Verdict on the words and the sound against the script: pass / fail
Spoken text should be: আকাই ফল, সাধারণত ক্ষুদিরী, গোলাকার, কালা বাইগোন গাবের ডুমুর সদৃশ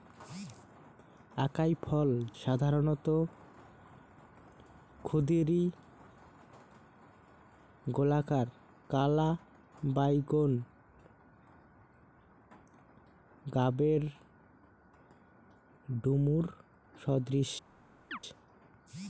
fail